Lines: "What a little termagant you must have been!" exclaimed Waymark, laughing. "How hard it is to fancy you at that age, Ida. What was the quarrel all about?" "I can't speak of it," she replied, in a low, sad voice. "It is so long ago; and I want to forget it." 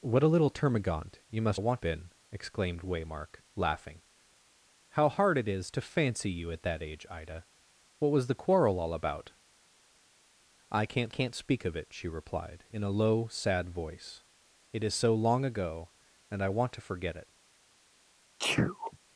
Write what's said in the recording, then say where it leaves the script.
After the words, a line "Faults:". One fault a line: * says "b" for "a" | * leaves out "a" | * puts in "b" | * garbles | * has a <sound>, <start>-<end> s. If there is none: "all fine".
"What a little termagant you must want been!" exclaimed Waymark, laughing. "How hard it is to fancy you at that age, Ida. What was the quarrel all about?" "I can't can't speak of it," she replied, in a low, sad voice. "It is so long ago; and I want to forget it."
Faults:
* says "want" for "have"
* puts in "can't"
* has a sneeze, 18.4-19.0 s